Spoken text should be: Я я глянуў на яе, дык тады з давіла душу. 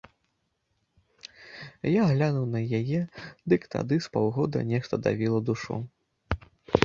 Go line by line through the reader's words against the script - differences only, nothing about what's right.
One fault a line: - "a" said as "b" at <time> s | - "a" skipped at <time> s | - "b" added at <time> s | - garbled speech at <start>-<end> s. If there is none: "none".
- "я" skipped at 2.0 s
- "паўгода нешта" added at 4.1 s